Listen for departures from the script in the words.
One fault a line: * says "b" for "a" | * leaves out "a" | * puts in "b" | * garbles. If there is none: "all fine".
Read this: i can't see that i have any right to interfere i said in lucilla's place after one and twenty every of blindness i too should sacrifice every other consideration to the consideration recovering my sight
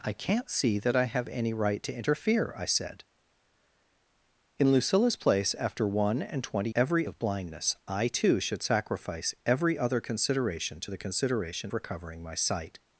all fine